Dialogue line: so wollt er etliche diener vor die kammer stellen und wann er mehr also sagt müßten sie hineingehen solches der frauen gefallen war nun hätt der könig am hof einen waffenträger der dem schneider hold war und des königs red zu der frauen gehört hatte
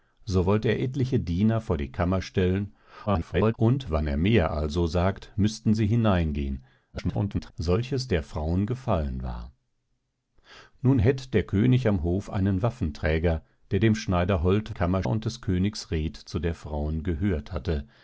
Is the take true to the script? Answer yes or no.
no